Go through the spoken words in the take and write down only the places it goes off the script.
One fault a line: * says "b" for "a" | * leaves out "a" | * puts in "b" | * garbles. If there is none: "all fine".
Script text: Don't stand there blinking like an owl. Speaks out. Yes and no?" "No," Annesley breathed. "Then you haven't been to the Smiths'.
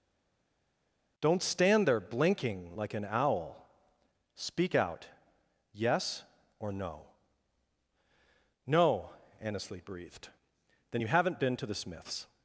* says "Speak" for "Speaks"
* says "or" for "and"